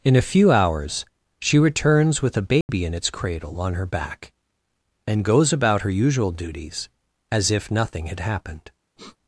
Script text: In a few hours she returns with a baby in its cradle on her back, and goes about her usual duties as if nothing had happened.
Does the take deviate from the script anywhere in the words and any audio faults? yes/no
yes